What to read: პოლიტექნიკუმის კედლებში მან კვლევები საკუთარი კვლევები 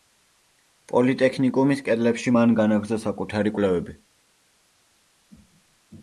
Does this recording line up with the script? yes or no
no